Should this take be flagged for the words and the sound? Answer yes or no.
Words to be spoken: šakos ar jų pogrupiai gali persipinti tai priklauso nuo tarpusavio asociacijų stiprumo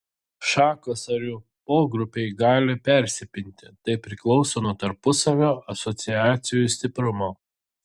no